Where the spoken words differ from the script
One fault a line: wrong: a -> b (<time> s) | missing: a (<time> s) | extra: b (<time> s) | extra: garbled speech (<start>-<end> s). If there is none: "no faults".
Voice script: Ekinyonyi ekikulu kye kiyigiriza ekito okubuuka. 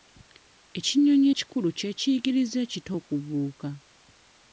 no faults